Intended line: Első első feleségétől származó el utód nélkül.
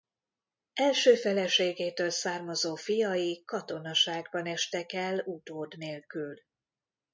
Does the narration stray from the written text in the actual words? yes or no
yes